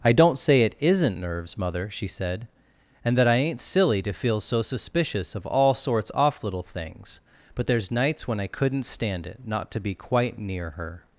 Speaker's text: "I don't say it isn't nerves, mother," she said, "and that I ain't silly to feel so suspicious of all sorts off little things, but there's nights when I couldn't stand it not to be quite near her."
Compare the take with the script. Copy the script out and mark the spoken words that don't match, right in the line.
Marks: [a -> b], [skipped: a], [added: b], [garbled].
"I don't say it isn't nerves, mother," she said, "and that I ain't silly to feel so suspicious of all sorts off little things, but there's nights when I couldn't stand it not to be quite near her."